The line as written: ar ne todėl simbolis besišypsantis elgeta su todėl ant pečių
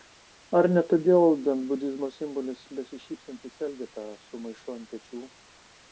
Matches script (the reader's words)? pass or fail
fail